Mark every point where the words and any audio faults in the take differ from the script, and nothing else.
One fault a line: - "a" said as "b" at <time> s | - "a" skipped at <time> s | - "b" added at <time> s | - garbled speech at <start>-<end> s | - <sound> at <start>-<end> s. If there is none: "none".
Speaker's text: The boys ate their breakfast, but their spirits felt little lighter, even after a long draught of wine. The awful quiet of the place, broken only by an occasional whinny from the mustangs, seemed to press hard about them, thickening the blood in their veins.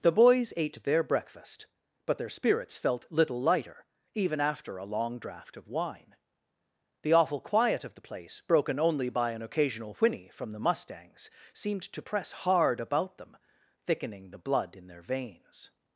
none